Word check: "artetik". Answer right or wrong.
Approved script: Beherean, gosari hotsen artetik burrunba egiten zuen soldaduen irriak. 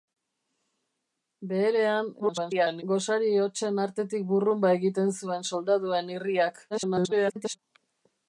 right